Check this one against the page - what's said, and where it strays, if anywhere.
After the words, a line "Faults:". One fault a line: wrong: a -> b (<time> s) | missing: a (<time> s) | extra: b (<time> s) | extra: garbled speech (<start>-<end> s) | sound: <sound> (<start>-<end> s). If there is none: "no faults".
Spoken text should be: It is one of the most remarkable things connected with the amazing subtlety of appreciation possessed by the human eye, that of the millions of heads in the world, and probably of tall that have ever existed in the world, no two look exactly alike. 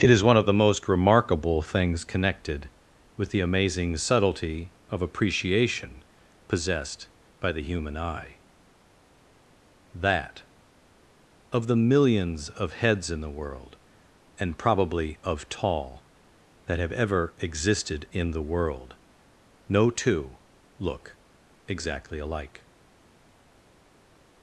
It is one of the most remarkable things connected with the amazing subtlety of appreciation possessed by the human eye, that of the millions of heads in the world, and probably of tall that have ever existed in the world, no two look exactly alike.
Faults:
no faults